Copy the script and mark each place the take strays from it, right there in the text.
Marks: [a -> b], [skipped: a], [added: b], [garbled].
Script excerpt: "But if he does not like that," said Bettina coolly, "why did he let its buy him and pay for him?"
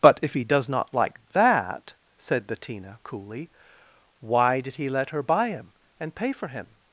"But if he does not like that," said Bettina coolly, "why did he let [its -> her] buy him and pay for him?"